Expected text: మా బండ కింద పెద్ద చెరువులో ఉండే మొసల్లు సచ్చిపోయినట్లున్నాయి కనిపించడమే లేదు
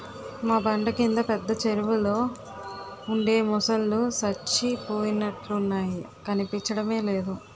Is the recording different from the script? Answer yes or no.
no